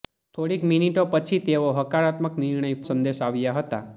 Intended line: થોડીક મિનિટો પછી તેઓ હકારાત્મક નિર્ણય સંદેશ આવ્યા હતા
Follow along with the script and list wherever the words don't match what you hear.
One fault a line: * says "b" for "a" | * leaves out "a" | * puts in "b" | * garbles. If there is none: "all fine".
all fine